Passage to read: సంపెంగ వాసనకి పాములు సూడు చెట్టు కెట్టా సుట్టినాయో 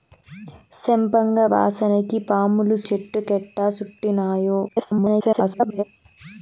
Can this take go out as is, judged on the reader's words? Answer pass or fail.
fail